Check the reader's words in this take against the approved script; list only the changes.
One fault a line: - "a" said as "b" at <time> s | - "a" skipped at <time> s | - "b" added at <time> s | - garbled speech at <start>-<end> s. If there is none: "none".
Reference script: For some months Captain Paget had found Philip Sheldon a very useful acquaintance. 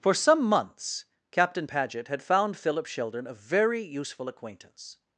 none